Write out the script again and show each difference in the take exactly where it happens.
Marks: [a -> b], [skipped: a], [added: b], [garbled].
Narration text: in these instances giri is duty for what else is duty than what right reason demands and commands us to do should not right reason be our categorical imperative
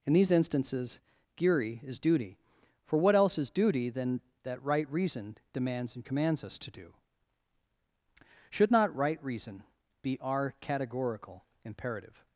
in these instances giri is duty for what else is duty than [what -> that] right reason demands and commands us to do should not right reason be our categorical imperative